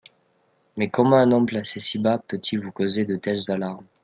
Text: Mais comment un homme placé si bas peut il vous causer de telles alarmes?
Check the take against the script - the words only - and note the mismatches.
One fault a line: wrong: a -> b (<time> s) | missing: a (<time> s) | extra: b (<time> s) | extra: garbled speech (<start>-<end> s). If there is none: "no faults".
no faults